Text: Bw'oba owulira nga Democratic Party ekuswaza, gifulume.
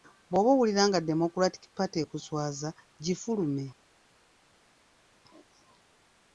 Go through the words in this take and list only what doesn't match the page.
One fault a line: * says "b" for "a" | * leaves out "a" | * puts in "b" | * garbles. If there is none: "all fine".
all fine